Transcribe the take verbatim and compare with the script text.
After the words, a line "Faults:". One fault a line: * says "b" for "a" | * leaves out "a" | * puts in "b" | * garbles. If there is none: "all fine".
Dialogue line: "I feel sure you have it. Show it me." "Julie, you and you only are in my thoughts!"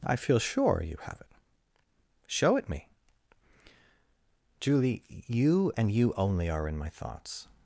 "I feel sure you have it. Show it me." "Julie, you and you only are in my thoughts!"
Faults:
all fine